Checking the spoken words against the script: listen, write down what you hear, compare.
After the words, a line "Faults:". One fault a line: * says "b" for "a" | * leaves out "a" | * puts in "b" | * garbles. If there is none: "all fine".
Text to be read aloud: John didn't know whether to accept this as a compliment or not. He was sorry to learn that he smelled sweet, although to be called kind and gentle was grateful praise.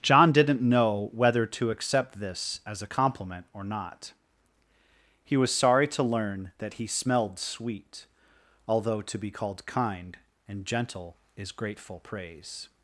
John didn't know whether to accept this as a compliment or not. He was sorry to learn that he smelled sweet, although to be called kind and gentle is grateful praise.
Faults:
* says "is" for "was"